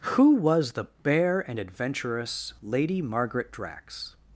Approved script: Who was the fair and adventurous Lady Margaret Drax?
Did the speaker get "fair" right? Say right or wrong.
wrong